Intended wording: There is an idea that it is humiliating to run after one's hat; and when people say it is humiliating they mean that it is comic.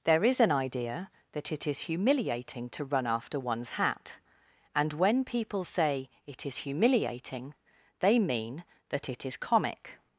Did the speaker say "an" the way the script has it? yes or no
yes